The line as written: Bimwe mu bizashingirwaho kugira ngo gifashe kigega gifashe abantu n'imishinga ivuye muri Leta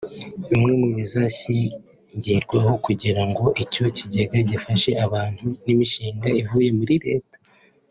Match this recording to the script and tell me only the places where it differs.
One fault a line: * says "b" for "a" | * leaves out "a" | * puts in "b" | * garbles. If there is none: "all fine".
* says "icyo" for "gifashe"